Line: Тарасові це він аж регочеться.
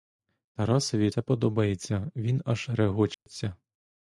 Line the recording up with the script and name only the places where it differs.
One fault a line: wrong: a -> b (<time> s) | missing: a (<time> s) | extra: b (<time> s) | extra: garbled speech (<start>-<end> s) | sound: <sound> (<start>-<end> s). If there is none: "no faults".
extra: подобається (1.2 s)
sound: dropout (3.1-3.3 s)